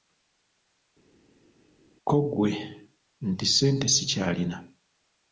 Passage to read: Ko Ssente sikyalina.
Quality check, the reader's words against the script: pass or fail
fail